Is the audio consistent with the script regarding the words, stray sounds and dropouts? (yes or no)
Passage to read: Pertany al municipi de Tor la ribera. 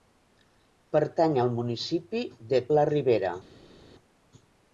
no